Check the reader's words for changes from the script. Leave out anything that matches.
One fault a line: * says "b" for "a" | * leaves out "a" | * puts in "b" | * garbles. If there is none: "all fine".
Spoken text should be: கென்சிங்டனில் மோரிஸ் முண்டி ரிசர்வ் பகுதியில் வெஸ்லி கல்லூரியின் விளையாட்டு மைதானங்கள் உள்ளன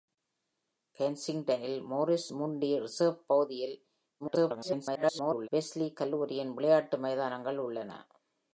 * garbles